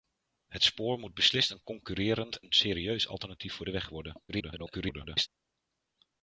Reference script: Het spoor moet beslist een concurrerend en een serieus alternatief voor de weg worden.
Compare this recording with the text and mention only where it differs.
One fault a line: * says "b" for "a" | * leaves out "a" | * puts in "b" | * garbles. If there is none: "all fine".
* leaves out "en"
* garbles